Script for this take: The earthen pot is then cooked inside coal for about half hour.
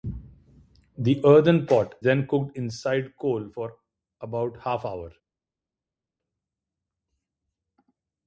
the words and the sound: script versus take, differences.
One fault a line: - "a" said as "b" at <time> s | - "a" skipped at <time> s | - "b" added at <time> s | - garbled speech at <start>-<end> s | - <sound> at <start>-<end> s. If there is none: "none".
- "is" skipped at 2.0 s